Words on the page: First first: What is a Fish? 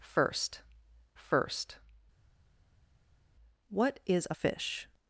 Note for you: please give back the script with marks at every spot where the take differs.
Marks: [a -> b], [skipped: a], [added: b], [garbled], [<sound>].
First first: What is a Fish?